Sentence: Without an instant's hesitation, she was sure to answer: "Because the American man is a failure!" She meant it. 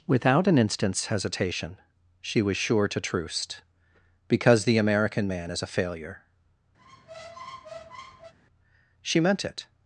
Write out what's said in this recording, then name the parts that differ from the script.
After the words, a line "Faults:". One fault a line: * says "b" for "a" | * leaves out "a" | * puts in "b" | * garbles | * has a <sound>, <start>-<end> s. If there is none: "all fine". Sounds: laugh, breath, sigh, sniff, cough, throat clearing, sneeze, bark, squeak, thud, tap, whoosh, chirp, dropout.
Without an instant's hesitation, she was sure to troost: "Because the American man is a failure!" She meant it.
Faults:
* says "troost" for "answer"
* has a squeak, 6.8-8.3 s